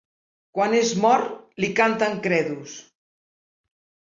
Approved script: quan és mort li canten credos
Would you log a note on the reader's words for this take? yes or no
no